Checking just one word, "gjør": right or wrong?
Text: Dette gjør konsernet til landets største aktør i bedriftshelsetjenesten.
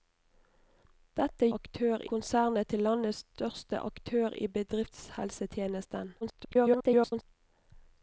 wrong